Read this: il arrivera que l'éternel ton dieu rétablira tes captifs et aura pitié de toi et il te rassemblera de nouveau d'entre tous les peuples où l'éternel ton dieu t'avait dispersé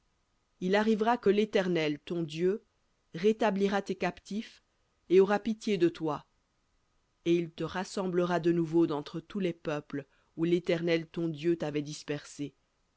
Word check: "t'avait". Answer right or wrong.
right